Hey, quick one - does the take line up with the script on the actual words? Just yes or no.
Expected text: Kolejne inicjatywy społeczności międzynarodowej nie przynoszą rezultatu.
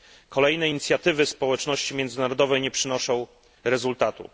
yes